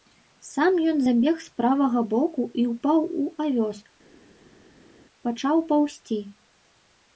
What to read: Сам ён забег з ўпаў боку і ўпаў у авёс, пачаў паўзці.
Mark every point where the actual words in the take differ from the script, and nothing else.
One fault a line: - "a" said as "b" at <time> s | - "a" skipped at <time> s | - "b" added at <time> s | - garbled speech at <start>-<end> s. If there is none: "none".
- "ўпаў" said as "правага" at 1.6 s